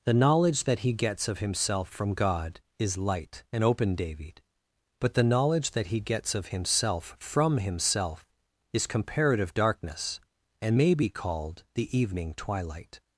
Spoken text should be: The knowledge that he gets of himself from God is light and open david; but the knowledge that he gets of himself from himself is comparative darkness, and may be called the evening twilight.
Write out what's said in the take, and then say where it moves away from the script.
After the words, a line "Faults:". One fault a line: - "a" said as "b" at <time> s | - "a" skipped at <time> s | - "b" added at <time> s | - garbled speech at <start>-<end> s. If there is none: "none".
The knowledge that he gets of himself from God is light and open david; but the knowledge that he gets of himself from himself is comparative darkness, and may be called the evening twilight.
Faults:
none